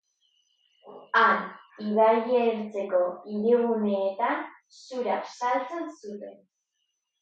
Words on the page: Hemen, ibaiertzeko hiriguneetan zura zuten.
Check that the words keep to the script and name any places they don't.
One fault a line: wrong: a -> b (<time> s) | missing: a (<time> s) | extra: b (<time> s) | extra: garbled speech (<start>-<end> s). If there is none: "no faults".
wrong: Hemen -> Han (1.2 s)
extra: saltzen (5.3 s)